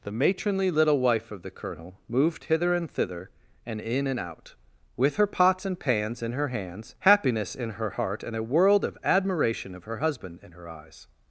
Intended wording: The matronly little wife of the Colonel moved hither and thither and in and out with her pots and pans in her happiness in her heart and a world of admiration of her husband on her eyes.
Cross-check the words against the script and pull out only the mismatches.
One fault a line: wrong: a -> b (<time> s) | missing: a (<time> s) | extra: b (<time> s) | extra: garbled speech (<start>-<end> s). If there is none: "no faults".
extra: hands (6.5 s)
wrong: on -> in (10.4 s)